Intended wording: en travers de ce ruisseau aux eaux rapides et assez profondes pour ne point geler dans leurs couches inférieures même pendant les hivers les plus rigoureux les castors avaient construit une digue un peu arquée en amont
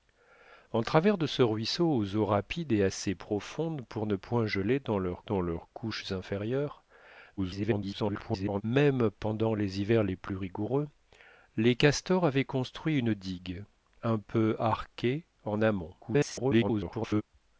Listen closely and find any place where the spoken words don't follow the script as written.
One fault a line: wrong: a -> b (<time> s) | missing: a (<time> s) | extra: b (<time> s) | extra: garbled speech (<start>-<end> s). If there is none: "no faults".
extra: dans leurs (5.2 s)
extra: garbled speech (7.4-8.6 s)
extra: garbled speech (16.0-17.2 s)